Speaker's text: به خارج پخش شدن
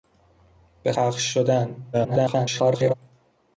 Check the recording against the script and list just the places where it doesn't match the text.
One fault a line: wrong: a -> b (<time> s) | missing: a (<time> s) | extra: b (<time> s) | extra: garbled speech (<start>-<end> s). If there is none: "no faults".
missing: خارج (0.9 s)
extra: garbled speech (1.9-2.9 s)